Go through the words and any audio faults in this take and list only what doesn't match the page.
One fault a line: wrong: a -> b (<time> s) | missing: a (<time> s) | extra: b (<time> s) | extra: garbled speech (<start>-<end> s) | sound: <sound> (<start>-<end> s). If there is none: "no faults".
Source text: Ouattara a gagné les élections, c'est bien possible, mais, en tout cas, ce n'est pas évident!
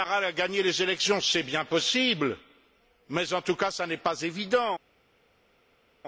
no faults